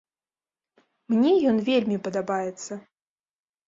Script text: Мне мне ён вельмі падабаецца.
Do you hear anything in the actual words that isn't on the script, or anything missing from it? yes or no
yes